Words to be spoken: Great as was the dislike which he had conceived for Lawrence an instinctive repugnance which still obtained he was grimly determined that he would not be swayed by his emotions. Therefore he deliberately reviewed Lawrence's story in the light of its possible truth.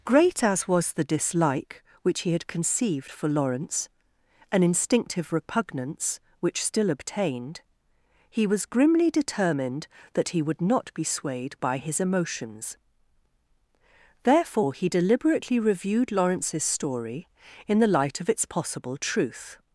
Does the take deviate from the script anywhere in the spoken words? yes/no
no